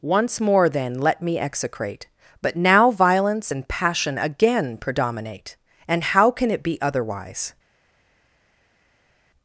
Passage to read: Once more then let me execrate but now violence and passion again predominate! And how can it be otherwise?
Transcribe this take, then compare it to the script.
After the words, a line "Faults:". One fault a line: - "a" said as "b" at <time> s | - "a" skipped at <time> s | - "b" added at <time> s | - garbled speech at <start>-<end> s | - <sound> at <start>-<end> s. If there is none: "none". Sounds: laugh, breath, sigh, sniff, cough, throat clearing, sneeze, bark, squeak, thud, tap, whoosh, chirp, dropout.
Once more then let me execrate but now violence and passion again predominate! And how can it be otherwise?
Faults:
none